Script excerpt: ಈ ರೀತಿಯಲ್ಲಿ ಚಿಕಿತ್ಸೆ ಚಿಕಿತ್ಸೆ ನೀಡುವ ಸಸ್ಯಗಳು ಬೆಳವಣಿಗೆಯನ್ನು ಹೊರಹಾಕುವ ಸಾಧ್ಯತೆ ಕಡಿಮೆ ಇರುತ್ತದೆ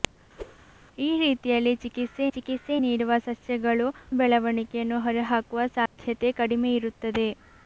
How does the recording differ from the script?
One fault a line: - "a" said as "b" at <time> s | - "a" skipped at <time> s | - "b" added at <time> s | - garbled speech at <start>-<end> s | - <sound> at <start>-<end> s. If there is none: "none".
- whoosh at 0.4-0.6 s
- dropout at 5.9-6.0 s